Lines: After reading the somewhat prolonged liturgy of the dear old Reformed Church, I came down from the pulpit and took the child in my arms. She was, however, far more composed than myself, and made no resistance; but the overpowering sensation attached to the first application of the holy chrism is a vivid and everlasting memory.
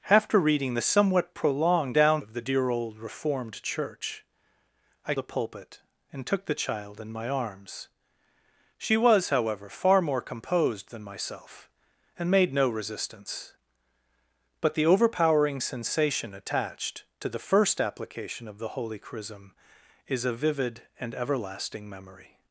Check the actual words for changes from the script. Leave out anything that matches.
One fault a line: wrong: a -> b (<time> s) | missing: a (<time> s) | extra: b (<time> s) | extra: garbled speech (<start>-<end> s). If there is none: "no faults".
wrong: liturgy -> down (1.9 s)
missing: came down from (5.1 s)